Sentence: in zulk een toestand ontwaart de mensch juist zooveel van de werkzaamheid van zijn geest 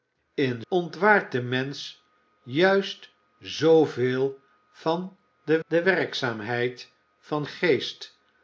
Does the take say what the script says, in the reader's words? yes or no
no